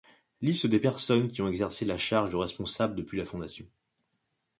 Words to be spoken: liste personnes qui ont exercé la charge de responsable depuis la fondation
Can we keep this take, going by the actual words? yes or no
no